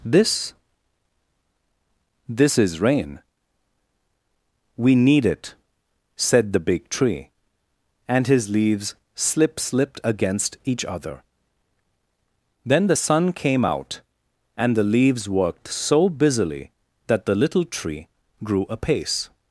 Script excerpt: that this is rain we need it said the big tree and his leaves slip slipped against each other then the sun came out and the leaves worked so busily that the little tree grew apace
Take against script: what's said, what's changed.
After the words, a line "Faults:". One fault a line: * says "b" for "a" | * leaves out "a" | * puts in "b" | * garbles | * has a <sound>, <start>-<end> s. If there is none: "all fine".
this this is rain we need it said the big tree and his leaves slip slipped against each other then the sun came out and the leaves worked so busily that the little tree grew apace
Faults:
* says "this" for "that"